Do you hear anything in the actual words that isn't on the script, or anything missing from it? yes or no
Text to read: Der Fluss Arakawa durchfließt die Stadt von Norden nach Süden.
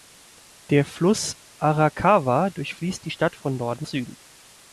yes